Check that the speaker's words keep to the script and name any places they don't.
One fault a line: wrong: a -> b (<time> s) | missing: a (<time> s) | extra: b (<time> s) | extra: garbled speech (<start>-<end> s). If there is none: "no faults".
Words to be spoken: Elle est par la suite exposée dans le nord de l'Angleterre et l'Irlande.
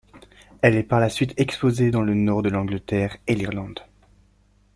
no faults